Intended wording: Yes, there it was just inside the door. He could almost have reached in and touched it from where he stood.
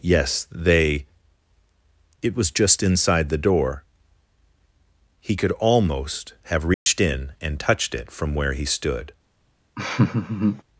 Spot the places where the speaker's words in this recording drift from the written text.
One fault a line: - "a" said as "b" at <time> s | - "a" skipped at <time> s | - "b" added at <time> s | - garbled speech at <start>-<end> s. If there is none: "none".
- "there" said as "they" at 0.5 s